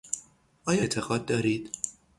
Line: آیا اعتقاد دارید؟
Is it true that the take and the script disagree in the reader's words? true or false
false